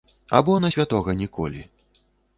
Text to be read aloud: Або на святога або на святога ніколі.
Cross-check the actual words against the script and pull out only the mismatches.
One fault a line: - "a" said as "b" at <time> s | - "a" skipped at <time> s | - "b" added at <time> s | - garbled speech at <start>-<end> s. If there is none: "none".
- "або на святога" skipped at 1.1 s